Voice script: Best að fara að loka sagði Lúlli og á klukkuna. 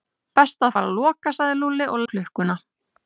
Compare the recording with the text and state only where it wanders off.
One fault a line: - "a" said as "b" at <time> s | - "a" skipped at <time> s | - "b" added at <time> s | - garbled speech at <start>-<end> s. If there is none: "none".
none